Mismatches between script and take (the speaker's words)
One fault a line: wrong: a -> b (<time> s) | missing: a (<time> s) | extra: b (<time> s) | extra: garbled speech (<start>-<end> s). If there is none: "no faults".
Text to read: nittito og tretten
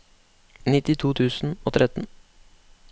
extra: tusen (1.2 s)